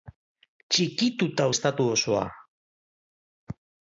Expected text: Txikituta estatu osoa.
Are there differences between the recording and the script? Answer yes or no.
no